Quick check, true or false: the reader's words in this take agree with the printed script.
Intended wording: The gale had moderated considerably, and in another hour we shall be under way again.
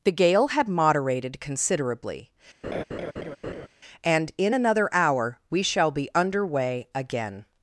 true